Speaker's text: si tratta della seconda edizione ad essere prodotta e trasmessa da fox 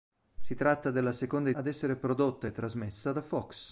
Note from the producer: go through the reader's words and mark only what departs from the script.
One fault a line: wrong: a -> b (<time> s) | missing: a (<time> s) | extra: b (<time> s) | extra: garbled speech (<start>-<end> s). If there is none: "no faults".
missing: edizione (1.5 s)